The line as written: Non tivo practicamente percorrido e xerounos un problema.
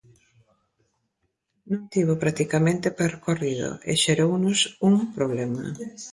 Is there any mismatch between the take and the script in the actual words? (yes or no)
no